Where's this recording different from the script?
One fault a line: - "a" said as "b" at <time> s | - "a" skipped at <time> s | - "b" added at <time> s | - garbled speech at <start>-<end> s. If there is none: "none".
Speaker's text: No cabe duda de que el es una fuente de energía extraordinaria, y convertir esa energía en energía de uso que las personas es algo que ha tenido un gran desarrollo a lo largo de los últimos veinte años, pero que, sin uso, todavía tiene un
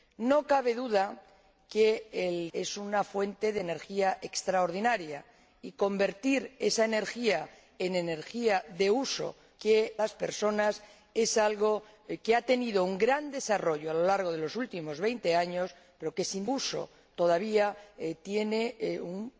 none